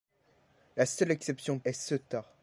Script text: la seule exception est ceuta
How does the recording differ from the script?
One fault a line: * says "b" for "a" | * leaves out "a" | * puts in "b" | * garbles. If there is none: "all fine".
all fine